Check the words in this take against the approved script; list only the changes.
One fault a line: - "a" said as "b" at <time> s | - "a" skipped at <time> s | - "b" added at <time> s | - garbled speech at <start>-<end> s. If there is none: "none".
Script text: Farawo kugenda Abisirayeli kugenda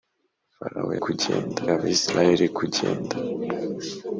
none